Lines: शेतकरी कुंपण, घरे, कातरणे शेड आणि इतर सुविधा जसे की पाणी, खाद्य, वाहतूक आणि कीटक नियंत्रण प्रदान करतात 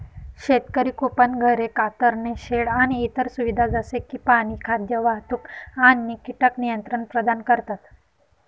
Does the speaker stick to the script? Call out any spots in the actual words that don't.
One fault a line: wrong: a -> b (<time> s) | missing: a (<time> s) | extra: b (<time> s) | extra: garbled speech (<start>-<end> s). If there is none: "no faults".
no faults